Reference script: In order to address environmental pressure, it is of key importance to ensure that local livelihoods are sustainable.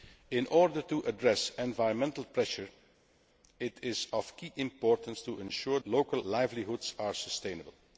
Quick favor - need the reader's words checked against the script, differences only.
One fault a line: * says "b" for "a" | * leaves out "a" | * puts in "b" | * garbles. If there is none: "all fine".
* leaves out "that"